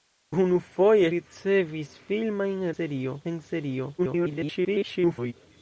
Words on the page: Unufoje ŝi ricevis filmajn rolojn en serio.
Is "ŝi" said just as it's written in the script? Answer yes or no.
no